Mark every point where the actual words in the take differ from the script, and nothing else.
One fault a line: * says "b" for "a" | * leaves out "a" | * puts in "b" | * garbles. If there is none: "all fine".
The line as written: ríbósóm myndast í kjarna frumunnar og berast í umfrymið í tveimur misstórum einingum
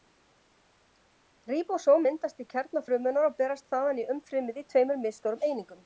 * puts in "þaðan"